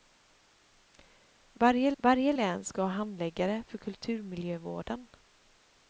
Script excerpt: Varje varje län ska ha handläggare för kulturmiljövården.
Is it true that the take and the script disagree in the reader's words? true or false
false